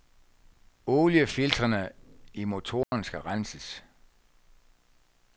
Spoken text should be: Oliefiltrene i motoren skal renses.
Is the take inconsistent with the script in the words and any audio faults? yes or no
yes